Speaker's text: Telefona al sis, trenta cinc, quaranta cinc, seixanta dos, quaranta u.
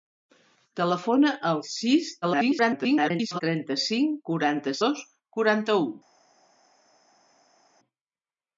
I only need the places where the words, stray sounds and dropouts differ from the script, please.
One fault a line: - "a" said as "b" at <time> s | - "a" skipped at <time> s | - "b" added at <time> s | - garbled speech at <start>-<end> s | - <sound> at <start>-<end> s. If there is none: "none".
- garbled speech at 2.2-3.4 s
- "cinc seixanta" skipped at 4.8 s